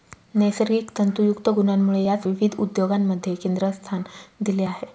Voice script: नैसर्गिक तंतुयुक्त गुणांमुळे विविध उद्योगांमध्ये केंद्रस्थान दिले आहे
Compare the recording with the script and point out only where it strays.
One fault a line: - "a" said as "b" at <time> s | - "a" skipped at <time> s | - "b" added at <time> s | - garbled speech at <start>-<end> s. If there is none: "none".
- "यास" added at 2.0 s